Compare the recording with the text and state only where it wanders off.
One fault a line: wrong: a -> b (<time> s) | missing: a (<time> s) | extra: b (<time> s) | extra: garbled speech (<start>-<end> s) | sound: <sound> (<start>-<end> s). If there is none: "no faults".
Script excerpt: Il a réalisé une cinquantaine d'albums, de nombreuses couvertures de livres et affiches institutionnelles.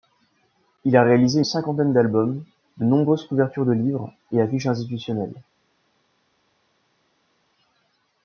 missing: une (1.4 s)